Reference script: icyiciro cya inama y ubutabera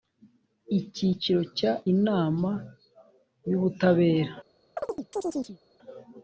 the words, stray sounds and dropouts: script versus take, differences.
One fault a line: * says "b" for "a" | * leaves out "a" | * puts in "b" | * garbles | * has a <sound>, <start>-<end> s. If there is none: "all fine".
* has a chirp, 4.8-5.6 s